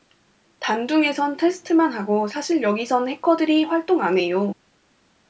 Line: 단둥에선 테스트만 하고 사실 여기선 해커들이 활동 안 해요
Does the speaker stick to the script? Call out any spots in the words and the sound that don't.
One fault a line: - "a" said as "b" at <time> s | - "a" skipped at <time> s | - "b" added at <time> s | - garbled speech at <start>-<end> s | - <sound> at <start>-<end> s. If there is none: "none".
none